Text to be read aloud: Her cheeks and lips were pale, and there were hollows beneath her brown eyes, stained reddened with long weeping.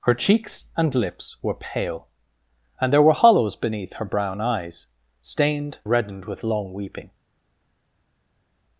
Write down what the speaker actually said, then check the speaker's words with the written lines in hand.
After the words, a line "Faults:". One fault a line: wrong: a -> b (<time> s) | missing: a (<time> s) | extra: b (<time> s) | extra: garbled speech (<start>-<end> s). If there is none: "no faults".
Her cheeks and lips were pale, and there were hollows beneath her brown eyes, stained reddened with long weeping.
Faults:
no faults